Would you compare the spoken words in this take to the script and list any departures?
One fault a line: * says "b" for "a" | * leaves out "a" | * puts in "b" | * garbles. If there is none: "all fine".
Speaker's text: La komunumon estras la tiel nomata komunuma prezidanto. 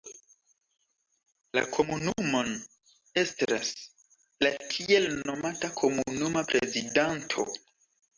all fine